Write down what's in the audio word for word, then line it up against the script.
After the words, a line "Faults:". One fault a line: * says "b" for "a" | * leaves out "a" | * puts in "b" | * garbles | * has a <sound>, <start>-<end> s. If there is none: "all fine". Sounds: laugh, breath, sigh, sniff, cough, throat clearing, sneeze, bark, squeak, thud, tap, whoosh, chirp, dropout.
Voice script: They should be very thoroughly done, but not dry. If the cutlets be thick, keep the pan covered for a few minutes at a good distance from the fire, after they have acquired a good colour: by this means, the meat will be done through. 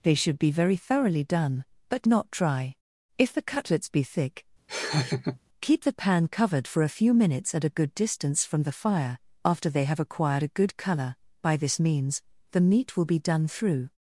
They should be very thoroughly done, but not dry. If the cutlets be thick, keep the pan covered for a few minutes at a good distance from the fire, after they have acquired a good colour: by this means, the meat will be done through.
Faults:
* has a laugh, 4.7-5.4 s